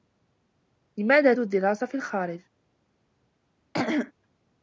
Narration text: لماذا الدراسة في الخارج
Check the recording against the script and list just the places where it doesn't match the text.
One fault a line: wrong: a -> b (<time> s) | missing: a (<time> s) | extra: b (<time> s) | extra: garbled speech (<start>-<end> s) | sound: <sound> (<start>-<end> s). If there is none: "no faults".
sound: throat clearing (3.7-4.1 s)